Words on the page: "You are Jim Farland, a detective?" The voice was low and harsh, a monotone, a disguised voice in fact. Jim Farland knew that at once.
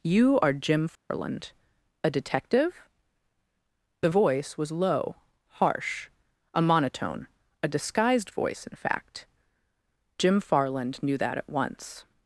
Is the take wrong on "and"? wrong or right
wrong